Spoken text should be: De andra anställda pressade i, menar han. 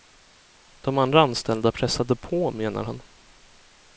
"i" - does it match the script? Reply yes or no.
no